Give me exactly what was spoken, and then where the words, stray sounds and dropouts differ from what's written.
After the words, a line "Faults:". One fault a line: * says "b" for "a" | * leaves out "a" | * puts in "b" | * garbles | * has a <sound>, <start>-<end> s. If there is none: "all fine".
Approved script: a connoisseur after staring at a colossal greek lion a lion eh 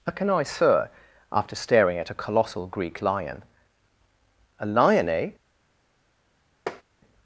a connoisseur after staring at a colossal greek lion a lion eh
Faults:
* has a tap, 6.7-6.8 s